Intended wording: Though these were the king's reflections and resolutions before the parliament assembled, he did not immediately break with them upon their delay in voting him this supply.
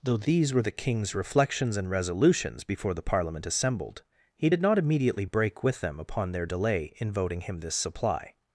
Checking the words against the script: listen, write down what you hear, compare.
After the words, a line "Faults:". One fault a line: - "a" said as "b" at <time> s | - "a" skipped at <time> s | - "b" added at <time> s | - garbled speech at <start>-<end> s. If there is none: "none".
Though these were the king's reflections and resolutions before the parliament assembled, he did not immediately break with them upon their delay in voting him this supply.
Faults:
none